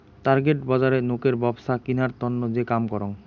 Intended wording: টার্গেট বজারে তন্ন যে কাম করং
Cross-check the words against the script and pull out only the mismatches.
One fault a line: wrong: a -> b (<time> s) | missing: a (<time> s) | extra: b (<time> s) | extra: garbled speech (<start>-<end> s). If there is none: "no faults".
extra: নোকের ব্যপছা কিনার (1.0 s)